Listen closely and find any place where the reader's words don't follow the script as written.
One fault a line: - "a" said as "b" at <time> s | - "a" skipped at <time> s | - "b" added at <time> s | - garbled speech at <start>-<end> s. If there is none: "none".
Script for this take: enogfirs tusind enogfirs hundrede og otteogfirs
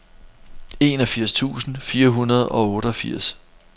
- "enogfirs" said as "fire" at 1.8 s